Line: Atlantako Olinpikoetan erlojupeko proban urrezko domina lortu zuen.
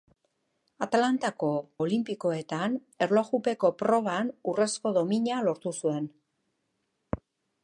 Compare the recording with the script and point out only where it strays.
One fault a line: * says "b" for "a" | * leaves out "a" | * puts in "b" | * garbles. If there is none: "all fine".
all fine